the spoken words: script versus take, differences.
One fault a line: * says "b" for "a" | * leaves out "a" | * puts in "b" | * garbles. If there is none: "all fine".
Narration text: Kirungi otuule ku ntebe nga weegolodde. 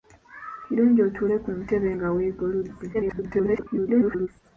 * garbles